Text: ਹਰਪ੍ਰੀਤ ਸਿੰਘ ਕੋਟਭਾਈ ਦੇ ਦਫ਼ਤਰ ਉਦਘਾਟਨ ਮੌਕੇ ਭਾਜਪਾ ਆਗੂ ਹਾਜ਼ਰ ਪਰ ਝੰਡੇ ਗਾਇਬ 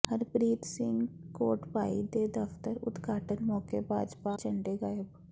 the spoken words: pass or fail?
fail